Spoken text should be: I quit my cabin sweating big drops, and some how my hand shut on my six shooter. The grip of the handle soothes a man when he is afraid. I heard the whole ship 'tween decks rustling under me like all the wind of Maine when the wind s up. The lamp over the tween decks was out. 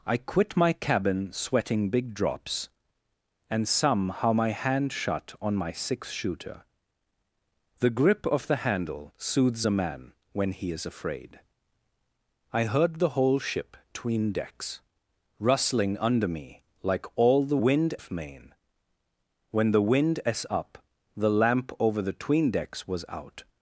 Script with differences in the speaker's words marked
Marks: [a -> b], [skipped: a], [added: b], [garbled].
I quit my cabin sweating big drops, and some how my hand shut on my six shooter. The grip of the handle soothes a man when he is afraid. I heard the whole ship 'tween decks rustling under me like all the wind of Maine when the wind s up. The lamp over the tween decks was out.